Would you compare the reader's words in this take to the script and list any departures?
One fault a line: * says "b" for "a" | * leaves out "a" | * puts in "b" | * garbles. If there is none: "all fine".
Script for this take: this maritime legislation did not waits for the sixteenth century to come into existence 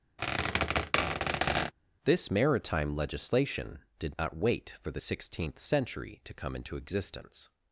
* says "wait" for "waits"